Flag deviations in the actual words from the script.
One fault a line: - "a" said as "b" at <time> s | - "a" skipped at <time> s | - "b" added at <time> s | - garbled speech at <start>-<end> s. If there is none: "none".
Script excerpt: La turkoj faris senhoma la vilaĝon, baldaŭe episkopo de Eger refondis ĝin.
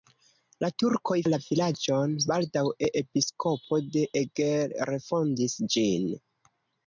- "faris senhoma" skipped at 1.2 s